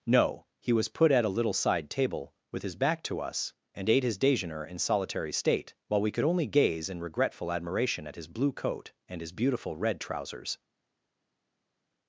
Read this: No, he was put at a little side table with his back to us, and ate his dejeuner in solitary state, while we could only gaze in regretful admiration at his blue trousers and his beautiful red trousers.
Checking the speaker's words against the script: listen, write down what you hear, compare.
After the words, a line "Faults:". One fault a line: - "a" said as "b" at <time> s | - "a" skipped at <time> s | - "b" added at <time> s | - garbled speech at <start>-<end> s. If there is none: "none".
No, he was put at a little side table with his back to us, and ate his dejeuner in solitary state, while we could only gaze in regretful admiration at his blue coat and his beautiful red trousers.
Faults:
- "trousers" said as "coat" at 8.5 s